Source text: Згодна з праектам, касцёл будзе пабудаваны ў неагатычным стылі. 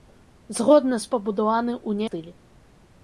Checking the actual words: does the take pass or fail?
fail